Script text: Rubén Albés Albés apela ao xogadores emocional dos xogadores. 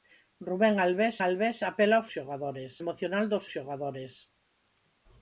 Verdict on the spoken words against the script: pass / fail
pass